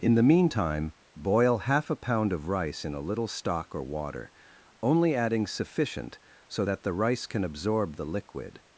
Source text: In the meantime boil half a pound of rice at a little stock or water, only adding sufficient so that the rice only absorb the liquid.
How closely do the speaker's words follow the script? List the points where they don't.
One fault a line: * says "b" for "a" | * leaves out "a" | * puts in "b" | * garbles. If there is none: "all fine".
* says "in" for "at"
* says "can" for "only"